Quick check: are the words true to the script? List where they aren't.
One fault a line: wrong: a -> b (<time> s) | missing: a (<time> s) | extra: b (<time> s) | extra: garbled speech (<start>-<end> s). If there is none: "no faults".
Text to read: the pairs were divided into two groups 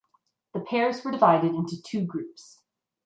no faults